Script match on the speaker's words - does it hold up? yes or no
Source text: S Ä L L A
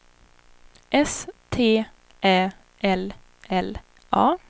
no